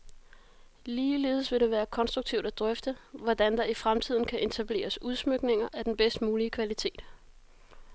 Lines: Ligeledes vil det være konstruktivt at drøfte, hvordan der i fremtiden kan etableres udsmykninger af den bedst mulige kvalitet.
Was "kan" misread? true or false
false